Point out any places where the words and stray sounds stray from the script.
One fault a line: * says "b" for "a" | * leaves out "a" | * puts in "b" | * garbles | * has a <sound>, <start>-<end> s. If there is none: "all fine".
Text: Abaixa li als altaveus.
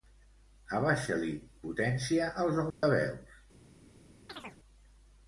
* puts in "potència"
* has a dropout, 2.7-2.8 s
* has a chirp, 4.3-4.6 s